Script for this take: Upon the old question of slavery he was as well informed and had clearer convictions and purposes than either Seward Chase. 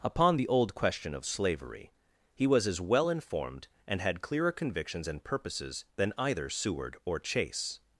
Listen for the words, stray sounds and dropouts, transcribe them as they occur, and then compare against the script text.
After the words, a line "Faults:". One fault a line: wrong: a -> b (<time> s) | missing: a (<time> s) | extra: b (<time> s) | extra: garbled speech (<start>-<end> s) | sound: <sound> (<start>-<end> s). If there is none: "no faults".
Upon the old question of slavery he was as well informed and had clearer convictions and purposes than either Seward or Chase.
Faults:
extra: or (7.1 s)